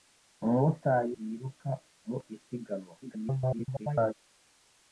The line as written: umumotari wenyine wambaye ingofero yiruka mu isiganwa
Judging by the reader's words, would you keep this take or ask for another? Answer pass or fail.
fail